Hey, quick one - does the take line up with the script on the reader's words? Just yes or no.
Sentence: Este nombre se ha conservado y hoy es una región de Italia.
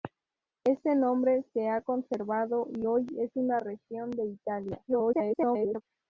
no